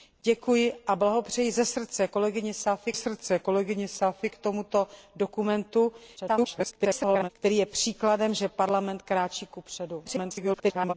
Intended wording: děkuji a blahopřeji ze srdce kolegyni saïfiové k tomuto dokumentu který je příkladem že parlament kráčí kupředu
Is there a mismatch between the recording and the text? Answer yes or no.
yes